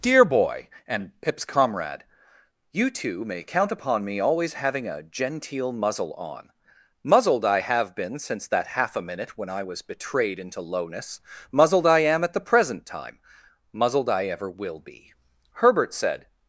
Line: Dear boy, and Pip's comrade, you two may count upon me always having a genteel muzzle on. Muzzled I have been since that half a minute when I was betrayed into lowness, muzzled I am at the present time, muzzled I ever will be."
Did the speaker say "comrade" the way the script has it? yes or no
yes